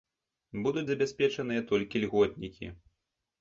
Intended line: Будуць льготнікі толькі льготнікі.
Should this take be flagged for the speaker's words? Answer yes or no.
yes